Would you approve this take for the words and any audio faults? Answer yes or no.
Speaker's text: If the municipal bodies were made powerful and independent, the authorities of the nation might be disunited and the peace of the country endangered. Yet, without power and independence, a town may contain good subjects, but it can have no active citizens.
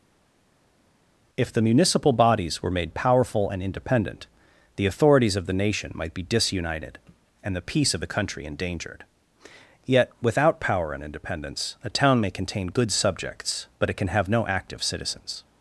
yes